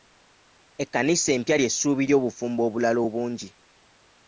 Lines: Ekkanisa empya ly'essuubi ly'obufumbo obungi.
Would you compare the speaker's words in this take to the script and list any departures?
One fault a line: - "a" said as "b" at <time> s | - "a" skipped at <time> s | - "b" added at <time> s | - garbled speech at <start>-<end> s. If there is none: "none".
- "obulala" added at 2.7 s